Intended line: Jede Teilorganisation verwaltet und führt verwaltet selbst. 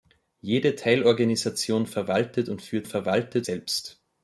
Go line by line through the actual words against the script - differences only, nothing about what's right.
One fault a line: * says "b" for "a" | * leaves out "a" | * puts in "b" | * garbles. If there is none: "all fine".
all fine